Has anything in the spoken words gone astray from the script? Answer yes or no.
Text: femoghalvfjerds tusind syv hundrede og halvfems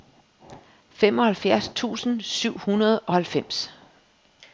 no